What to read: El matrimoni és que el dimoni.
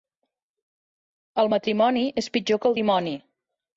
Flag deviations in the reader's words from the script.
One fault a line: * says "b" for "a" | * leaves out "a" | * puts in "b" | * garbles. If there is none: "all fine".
* puts in "pitjor"